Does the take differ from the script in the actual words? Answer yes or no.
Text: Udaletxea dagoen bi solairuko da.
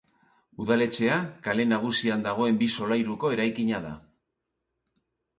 yes